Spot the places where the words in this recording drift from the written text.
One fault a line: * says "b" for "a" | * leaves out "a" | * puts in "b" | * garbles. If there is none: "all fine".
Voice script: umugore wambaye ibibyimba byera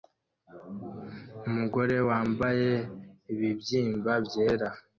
all fine